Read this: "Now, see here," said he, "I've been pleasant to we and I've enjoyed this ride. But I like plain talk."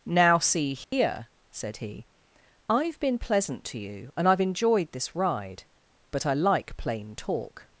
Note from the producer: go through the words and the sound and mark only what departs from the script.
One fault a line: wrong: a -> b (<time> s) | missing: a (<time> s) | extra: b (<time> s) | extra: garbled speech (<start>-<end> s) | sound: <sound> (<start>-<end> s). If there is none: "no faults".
sound: dropout (0.8-0.9 s)
wrong: we -> you (3.8 s)